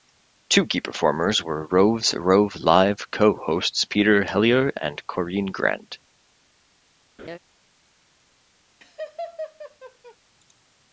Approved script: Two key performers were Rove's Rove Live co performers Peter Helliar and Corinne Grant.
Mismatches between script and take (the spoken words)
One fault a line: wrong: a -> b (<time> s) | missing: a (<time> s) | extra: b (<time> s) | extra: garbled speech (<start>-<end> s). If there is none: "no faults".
wrong: performers -> hosts (3.4 s)